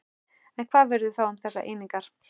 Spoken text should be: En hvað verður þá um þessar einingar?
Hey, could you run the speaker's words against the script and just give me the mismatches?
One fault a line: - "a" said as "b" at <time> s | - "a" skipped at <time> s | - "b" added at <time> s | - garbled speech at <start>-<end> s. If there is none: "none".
none